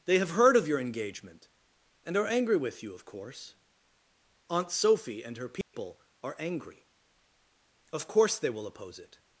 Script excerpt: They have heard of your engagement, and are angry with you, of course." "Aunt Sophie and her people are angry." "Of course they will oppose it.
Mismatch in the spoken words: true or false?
false